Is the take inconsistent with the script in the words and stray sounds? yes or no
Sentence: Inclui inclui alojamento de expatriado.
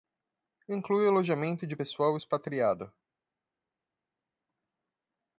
yes